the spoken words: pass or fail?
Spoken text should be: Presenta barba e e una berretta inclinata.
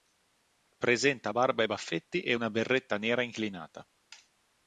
fail